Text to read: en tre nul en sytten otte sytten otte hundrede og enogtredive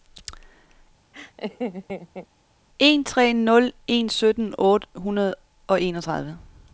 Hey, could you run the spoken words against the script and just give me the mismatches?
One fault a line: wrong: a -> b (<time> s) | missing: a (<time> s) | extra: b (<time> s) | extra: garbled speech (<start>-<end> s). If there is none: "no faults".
missing: sytten otte (4.9 s)